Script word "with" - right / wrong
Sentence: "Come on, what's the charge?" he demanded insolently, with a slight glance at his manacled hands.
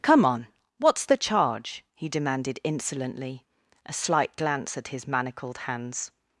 wrong